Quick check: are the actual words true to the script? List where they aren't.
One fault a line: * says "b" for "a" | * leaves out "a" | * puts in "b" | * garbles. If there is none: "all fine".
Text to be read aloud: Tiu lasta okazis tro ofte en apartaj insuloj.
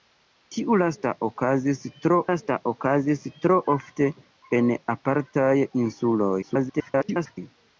* puts in "lasta okazis tro"
* garbles